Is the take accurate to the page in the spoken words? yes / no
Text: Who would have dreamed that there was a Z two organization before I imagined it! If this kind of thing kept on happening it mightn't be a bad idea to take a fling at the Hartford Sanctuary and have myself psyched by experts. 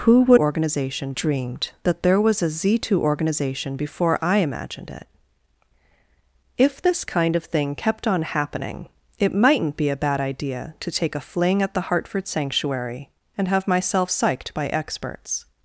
no